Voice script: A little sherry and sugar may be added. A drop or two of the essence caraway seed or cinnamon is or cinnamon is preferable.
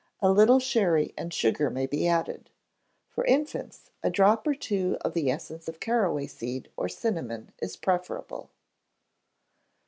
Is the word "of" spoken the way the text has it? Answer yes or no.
yes